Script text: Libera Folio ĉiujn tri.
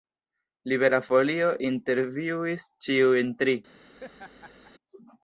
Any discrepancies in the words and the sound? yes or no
yes